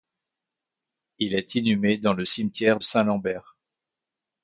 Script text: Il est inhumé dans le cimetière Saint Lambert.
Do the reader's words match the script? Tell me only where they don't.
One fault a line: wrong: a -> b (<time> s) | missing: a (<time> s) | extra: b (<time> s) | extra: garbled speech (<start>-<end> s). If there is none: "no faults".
no faults